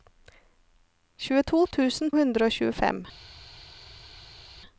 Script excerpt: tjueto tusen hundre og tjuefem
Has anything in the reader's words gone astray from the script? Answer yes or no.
no